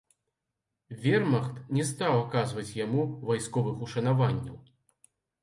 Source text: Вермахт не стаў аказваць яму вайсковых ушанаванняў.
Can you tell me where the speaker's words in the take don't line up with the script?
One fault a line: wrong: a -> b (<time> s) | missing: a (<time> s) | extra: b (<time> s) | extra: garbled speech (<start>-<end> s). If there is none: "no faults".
no faults